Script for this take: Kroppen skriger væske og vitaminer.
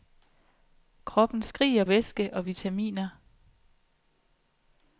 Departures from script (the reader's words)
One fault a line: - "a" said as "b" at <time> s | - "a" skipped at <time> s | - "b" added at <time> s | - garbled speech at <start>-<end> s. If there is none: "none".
none